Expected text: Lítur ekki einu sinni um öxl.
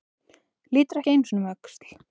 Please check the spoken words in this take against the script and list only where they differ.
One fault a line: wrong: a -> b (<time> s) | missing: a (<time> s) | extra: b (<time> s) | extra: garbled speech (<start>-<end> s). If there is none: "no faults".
no faults